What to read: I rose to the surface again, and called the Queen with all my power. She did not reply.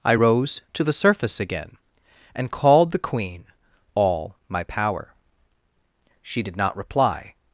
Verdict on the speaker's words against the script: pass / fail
fail